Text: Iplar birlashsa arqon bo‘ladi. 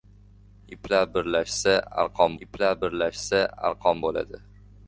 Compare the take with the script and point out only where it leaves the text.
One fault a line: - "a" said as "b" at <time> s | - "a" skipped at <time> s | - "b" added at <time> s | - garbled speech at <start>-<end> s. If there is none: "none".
- "iplar birlashsa arqon" added at 2.4 s